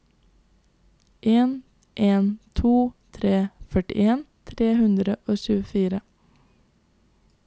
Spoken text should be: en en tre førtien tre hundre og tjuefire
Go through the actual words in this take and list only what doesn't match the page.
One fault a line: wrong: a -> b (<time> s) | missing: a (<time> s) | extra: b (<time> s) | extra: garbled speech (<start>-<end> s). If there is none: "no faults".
extra: to (2.6 s)